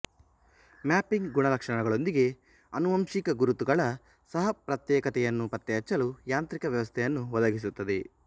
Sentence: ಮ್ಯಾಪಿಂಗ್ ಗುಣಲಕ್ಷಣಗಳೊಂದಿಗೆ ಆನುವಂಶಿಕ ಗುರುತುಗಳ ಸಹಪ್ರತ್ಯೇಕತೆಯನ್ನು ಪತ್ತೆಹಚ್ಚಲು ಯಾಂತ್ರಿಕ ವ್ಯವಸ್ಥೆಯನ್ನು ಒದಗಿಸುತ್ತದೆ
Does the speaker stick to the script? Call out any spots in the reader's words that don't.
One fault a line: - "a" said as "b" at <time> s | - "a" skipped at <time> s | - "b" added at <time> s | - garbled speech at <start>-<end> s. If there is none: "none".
none